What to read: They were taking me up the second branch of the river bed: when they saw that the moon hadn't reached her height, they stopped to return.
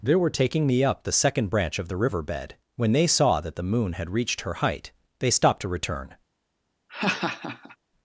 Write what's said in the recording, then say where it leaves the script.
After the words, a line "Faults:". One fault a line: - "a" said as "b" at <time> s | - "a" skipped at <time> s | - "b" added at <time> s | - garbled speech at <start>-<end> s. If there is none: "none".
They were taking me up the second branch of the river bed: when they saw that the moon had reached her height, they stopped to return.
Faults:
- "hadn't" said as "had" at 3.9 s